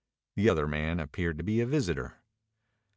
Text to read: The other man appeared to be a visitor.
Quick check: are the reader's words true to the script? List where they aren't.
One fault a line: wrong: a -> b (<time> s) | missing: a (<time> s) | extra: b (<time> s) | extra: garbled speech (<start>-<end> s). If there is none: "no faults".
no faults